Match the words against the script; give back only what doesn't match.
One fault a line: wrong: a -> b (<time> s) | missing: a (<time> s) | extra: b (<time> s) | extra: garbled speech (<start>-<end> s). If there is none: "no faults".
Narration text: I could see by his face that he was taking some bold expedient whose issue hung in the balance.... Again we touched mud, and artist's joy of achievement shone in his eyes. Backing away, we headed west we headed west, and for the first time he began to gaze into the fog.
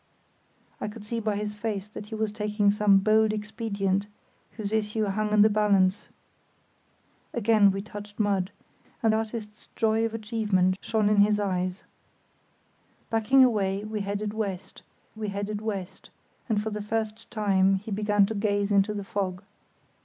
no faults